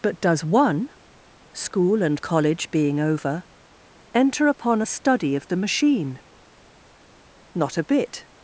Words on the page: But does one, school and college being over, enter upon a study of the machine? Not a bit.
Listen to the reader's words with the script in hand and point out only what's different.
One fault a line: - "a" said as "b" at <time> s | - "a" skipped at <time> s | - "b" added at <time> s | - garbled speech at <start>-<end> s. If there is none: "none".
none